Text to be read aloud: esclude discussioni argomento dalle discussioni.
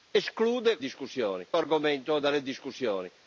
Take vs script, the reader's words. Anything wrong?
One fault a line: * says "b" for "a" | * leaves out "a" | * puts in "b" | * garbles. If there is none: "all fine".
all fine